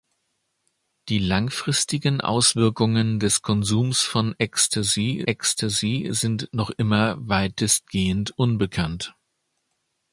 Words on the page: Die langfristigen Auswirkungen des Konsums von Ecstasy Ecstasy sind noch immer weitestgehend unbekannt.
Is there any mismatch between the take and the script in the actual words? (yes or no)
no